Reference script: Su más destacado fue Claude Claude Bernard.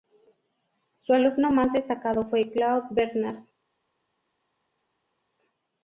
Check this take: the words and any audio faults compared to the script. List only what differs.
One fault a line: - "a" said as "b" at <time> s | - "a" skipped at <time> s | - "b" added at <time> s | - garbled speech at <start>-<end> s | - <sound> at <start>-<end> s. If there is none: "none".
- "alumno" added at 1.1 s
- "Claude" skipped at 2.9 s